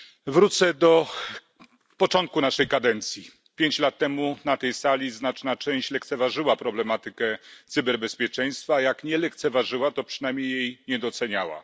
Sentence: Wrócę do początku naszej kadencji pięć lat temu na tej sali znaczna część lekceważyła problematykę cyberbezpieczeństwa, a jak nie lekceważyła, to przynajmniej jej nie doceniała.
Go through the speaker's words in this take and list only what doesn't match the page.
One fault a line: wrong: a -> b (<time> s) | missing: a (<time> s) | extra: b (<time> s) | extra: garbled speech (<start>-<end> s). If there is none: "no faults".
no faults